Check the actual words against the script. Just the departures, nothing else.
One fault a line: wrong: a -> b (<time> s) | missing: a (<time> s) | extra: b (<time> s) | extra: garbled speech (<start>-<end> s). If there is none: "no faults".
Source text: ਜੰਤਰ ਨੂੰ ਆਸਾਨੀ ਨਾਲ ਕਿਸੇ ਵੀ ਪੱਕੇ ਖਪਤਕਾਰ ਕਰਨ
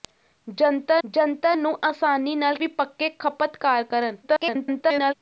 extra: ਜੰਤਰ (1.0 s)
missing: ਕਿਸੇ (2.6 s)
extra: garbled speech (4.2-5.1 s)